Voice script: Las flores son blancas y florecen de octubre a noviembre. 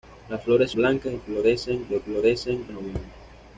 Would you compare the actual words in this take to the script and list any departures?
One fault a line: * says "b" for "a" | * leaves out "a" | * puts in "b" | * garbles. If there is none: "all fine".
* leaves out "son"
* says "florecen" for "octubre"